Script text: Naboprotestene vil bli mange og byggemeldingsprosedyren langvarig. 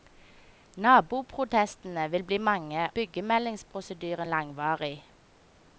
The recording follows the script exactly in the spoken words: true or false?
false